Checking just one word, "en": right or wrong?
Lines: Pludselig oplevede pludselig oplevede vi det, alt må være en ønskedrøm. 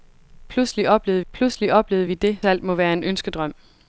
right